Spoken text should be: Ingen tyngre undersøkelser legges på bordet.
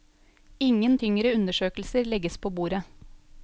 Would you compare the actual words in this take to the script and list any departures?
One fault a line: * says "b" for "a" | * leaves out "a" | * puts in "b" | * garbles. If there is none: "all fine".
all fine